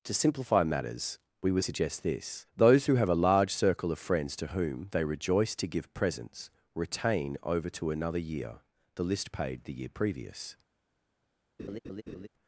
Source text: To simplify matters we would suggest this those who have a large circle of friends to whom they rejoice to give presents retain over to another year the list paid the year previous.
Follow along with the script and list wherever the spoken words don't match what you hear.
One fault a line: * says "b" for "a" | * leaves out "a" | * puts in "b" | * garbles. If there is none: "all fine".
all fine